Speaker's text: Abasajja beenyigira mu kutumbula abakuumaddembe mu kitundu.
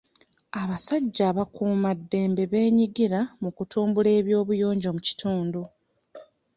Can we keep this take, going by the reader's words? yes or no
no